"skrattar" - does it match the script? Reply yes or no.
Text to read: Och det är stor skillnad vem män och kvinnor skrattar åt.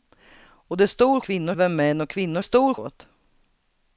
no